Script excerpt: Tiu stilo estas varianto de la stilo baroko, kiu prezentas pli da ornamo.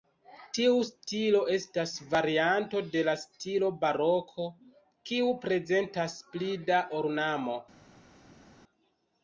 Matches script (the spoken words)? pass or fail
pass